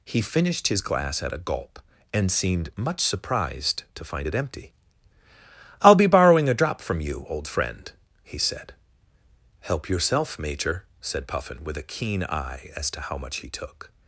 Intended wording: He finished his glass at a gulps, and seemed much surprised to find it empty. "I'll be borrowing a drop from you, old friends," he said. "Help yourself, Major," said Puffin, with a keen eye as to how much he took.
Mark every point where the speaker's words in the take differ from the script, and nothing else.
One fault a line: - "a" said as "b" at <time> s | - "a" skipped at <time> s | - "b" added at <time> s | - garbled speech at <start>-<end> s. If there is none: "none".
- "gulps" said as "gulp" at 1.4 s
- "friends" said as "friend" at 7.5 s